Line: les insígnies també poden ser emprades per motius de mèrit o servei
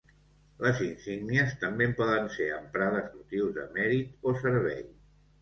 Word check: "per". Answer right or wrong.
wrong